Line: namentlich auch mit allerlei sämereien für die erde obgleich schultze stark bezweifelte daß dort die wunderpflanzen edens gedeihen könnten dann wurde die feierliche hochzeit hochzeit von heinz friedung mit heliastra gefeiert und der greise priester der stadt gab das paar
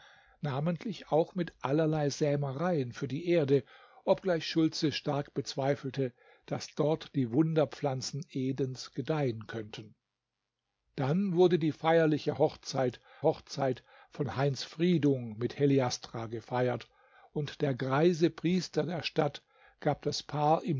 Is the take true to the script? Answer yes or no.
yes